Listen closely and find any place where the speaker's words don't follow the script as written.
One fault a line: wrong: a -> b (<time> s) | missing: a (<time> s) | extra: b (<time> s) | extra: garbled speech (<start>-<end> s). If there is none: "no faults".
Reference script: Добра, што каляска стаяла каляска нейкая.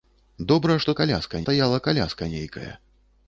no faults